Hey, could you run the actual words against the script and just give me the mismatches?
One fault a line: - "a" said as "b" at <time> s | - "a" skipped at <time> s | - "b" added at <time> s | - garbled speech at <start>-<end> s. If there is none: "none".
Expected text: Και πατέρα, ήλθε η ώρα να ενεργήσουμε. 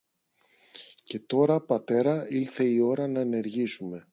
- "τώρα" added at 1.2 s